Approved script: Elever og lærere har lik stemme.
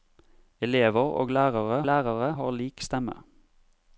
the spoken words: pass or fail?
fail